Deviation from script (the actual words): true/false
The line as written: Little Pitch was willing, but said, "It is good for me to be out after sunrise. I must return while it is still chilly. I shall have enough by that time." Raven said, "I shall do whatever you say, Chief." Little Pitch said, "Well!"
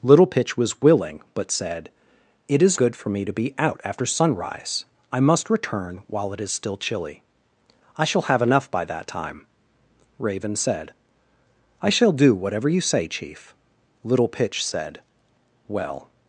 false